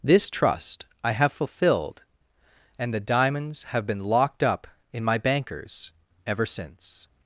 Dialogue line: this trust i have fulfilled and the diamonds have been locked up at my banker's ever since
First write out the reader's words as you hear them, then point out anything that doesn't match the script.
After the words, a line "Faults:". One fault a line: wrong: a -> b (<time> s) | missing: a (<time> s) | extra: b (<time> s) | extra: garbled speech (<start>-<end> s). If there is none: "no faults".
this trust i have fulfilled and the diamonds have been locked up in my banker's ever since
Faults:
wrong: at -> in (4.9 s)